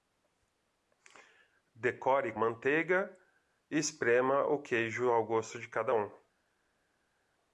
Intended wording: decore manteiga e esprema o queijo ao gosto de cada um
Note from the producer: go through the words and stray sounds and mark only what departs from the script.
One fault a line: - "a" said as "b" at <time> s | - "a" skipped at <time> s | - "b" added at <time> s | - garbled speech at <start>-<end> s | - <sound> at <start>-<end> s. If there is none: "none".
none